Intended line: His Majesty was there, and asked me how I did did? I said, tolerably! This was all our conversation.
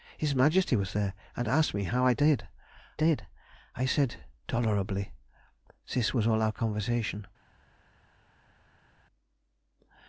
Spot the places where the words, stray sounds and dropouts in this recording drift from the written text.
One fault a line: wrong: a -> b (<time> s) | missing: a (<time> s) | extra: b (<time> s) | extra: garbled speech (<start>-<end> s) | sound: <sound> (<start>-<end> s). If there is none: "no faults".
no faults